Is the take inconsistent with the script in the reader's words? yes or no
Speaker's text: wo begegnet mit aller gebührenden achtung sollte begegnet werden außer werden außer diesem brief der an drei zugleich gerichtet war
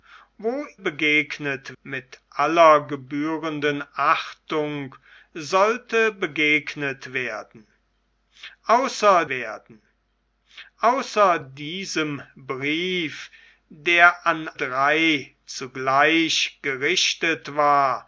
no